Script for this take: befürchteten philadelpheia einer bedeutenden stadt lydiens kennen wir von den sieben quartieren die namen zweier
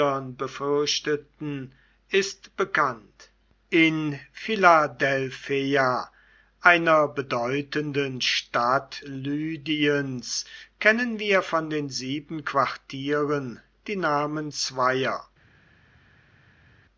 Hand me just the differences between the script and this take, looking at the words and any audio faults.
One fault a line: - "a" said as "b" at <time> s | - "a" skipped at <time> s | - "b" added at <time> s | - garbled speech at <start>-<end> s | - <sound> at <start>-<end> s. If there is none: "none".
- "ist bekannt in" added at 2.1 s